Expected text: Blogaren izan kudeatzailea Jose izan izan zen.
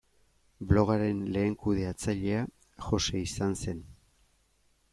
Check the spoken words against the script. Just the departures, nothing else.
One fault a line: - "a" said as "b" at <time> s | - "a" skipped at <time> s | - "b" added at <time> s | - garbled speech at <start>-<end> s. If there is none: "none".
- "izan" said as "lehen" at 1.4 s
- "izan" skipped at 3.5 s